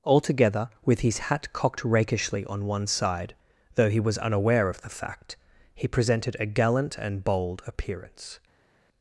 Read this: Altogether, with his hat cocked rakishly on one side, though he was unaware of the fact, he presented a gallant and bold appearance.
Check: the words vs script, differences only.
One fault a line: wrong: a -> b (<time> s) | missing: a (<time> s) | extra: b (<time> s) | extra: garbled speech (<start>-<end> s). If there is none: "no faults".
no faults